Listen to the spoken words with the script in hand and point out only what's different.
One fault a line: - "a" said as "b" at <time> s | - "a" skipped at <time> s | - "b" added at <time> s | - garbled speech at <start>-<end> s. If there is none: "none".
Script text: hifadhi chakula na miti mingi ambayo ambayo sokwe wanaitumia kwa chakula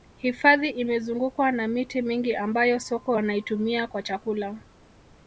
- "chakula" said as "imezungukwa" at 0.7 s
- "ambayo" skipped at 2.8 s